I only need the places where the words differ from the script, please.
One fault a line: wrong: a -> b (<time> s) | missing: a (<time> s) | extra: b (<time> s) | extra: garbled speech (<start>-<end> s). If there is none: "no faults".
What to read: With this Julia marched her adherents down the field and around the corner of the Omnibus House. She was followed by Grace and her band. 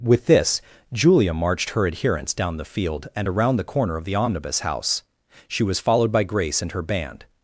no faults